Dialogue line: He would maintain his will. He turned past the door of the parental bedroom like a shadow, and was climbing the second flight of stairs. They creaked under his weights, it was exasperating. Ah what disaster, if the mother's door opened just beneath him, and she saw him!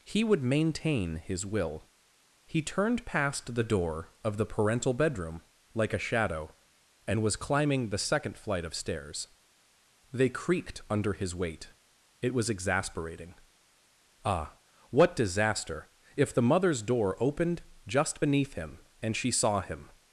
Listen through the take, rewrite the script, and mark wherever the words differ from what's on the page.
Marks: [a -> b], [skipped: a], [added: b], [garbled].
He would maintain his will. He turned past the door of the parental bedroom like a shadow, and was climbing the second flight of stairs. They creaked under his [weights, -> weight] it was exasperating. Ah what disaster, if the mother's door opened just beneath him, and she saw him!